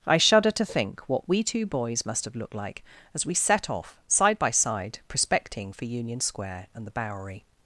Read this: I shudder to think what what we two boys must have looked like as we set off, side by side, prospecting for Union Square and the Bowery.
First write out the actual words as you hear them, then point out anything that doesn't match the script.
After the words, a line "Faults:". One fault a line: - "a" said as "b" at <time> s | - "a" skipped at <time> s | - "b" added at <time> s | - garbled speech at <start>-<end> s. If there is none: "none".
I shudder to think what we two boys must have looked like as we set off, side by side, prospecting for Union Square and the Bowery.
Faults:
- "what" skipped at 1.3 s